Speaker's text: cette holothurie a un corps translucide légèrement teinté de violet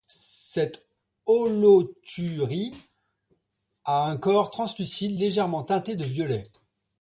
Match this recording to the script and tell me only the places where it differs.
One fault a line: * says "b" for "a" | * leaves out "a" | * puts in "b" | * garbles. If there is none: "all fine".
all fine